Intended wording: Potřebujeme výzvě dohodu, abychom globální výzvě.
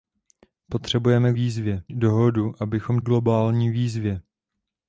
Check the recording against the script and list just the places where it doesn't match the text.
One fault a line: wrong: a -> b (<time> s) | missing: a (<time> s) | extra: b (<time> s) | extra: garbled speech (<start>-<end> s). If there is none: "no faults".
no faults